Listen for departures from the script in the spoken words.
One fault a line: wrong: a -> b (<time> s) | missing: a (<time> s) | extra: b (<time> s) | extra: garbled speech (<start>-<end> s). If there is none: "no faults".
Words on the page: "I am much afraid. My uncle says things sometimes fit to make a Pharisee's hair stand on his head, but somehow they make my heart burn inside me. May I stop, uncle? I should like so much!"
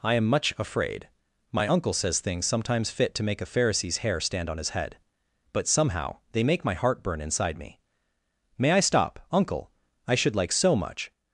no faults